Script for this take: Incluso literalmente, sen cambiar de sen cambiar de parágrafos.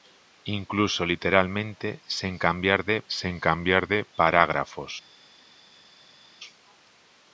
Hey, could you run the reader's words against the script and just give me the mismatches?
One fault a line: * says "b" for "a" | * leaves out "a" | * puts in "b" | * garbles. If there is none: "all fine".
all fine